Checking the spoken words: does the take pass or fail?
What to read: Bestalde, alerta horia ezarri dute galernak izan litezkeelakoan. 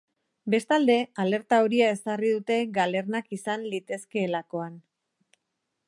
pass